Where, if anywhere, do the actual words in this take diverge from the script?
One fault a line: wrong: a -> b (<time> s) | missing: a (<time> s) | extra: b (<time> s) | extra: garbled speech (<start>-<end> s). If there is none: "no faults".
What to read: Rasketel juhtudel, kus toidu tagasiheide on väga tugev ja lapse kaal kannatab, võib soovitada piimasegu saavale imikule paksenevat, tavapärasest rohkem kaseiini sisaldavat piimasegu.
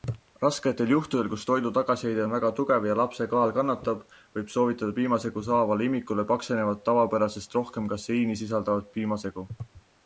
no faults